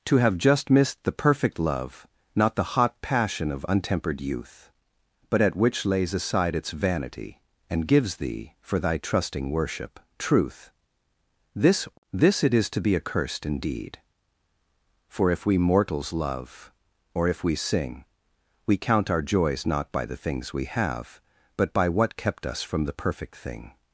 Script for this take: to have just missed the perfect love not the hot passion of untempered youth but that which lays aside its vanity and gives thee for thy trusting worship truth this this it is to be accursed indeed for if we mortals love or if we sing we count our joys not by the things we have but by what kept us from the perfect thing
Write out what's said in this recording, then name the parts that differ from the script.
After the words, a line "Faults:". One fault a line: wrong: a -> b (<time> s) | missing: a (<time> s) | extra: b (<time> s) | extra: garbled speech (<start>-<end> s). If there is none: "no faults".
to have just missed the perfect love not the hot passion of untempered youth but at which lays aside its vanity and gives thee for thy trusting worship truth this this it is to be accursed indeed for if we mortals love or if we sing we count our joys not by the things we have but by what kept us from the perfect thing
Faults:
wrong: that -> at (5.4 s)